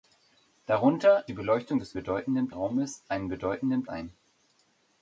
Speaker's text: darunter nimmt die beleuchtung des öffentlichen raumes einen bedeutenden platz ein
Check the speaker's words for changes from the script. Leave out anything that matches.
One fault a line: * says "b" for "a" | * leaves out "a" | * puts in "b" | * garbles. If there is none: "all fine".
* leaves out "nimmt"
* says "bedeutenden" for "öffentlichen"
* leaves out "platz"